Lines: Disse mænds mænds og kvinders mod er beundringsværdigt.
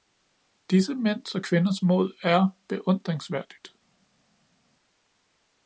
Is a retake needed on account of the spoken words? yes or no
yes